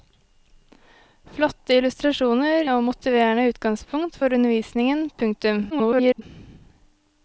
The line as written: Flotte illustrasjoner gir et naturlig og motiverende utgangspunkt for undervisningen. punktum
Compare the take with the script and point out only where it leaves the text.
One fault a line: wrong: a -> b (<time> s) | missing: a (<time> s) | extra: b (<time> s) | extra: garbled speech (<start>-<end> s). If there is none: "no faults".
missing: gir et naturlig (2.7 s)
extra: garbled speech (5.7-6.2 s)